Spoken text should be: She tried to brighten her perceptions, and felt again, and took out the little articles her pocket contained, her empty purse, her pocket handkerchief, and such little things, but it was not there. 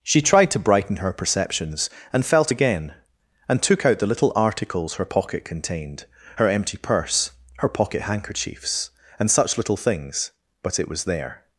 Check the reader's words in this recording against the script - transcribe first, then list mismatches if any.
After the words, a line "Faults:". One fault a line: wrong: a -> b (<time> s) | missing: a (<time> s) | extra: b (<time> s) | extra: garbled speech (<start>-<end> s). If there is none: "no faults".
She tried to brighten her perceptions, and felt again, and took out the little articles her pocket contained, her empty purse, her pocket handkerchiefs, and such little things, but it was there.
Faults:
wrong: handkerchief -> handkerchiefs (8.0 s)
missing: not (11.0 s)